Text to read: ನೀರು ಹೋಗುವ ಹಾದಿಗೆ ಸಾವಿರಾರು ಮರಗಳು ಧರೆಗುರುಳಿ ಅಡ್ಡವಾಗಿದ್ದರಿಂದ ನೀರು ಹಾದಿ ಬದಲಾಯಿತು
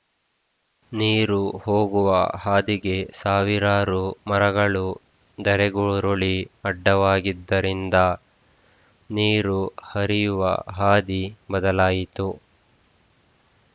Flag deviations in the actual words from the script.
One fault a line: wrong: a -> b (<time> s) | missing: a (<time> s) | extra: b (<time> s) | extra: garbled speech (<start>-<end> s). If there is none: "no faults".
extra: ಹರಿಯುವ (9.9 s)